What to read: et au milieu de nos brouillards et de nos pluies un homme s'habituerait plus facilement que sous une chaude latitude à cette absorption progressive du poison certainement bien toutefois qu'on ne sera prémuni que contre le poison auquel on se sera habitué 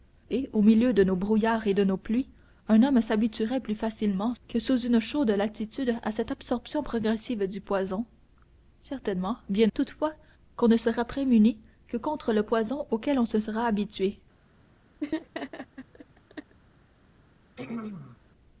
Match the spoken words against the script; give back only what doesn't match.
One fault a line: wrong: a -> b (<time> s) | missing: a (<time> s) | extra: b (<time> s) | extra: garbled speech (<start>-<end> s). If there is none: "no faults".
no faults